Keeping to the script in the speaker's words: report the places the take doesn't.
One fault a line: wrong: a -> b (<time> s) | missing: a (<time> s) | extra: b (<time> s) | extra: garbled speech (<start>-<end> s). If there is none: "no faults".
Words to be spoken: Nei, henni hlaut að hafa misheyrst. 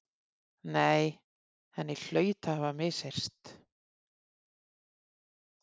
no faults